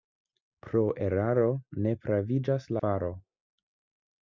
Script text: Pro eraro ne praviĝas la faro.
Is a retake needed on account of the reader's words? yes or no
yes